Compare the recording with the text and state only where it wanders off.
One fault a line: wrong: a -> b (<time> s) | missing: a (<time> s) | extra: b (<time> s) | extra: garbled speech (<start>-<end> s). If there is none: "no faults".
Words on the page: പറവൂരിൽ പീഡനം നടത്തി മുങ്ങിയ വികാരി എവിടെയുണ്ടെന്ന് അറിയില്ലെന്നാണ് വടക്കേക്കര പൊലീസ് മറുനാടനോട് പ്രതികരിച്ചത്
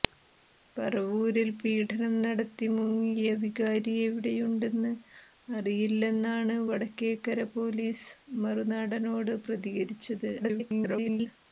extra: garbled speech (10.4-11.3 s)